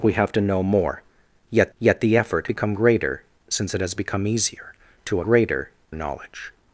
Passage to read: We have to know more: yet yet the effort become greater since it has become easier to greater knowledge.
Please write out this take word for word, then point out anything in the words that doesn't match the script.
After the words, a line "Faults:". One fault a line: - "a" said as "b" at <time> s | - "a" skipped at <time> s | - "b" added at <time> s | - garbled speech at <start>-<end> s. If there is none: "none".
We have to know more: yet yet the effort become greater since it has become easier to greater knowledge.
Faults:
none